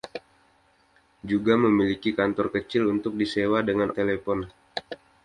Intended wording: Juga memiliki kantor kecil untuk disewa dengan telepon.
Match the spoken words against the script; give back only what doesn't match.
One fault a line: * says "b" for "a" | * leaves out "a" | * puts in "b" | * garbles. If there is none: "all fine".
all fine